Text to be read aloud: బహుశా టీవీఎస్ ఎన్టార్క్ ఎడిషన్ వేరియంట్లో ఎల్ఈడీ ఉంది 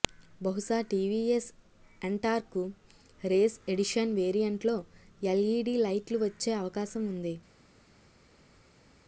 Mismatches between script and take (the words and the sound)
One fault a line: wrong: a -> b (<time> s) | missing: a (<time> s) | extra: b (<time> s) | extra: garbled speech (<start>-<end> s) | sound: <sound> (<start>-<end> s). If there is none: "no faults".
extra: రేస్ (3.2 s)
extra: లైట్లు వచ్చే అవకాశం (5.8 s)